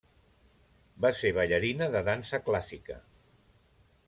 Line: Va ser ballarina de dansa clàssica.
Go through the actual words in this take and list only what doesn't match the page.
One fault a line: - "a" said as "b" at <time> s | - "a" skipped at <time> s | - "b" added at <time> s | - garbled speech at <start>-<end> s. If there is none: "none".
none